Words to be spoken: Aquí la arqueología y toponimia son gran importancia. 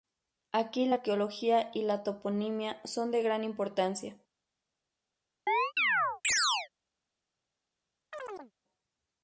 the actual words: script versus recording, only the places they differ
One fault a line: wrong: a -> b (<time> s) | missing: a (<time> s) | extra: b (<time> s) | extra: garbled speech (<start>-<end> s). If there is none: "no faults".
extra: la (1.8 s)
extra: de (3.1 s)